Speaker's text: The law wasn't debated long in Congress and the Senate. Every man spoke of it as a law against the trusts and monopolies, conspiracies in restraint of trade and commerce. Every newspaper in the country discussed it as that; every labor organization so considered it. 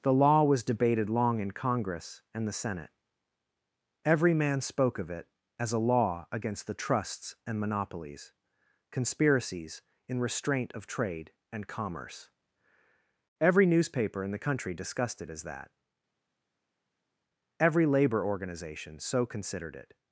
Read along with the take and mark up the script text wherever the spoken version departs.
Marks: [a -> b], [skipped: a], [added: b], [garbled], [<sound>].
The law [wasn't -> was] debated long in Congress and the Senate. Every man spoke of it as a law against the trusts and monopolies, conspiracies in restraint of trade and commerce. Every newspaper in the country discussed it as that; every labor organization so considered it.